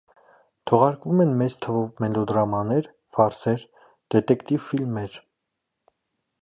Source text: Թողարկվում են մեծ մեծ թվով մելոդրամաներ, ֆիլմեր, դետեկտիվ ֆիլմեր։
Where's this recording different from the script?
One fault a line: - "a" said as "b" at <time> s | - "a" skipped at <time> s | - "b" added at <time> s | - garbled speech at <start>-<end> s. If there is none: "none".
- "մեծ" skipped at 1.6 s
- "ֆիլմեր" said as "ֆարսեր" at 3.2 s